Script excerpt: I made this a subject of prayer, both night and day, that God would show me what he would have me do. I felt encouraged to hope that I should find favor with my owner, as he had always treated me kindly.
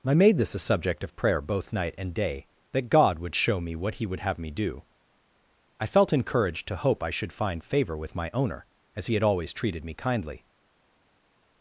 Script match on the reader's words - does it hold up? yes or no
no